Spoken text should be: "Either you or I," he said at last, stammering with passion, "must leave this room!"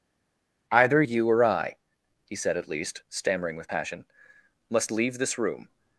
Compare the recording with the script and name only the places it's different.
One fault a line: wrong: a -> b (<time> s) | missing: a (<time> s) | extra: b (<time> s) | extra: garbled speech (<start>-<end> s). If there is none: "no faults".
wrong: last -> least (2.7 s)